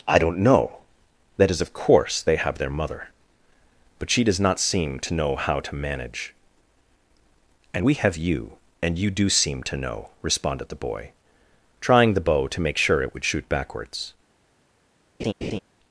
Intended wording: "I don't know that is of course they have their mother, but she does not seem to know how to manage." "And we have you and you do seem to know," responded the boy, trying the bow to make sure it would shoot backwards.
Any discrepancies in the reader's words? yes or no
no